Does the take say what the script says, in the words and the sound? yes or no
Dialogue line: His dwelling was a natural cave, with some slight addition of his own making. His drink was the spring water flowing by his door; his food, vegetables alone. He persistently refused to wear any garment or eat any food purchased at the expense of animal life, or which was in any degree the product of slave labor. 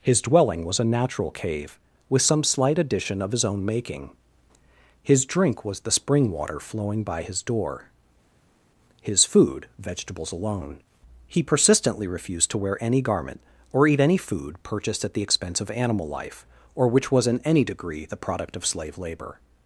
yes